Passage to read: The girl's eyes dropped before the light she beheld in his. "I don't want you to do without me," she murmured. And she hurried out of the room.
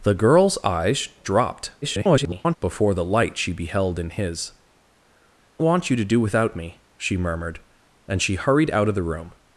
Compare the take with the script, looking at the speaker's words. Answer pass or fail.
fail